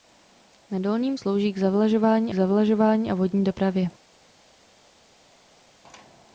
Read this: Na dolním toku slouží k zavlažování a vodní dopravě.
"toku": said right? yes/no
no